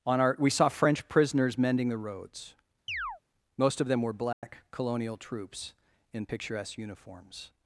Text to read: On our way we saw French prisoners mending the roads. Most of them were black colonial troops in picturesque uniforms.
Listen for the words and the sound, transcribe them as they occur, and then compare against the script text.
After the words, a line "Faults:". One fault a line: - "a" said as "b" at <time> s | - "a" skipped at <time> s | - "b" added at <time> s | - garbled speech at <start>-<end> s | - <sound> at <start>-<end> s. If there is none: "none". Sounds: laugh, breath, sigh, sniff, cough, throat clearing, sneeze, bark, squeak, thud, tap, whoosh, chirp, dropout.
On our we saw French prisoners mending the roads. Most of them were black colonial troops in picturesque uniforms.
Faults:
- "way" skipped at 0.3 s
- chirp at 2.9-3.2 s
- dropout at 4.3-4.4 s